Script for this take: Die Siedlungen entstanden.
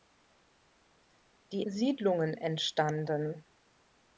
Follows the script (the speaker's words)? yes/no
yes